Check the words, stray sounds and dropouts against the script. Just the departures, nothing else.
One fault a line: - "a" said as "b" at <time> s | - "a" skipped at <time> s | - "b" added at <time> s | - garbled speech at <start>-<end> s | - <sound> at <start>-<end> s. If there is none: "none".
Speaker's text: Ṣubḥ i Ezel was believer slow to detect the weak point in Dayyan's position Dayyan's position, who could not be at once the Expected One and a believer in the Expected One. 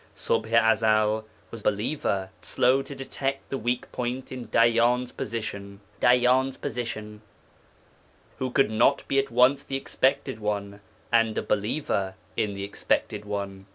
none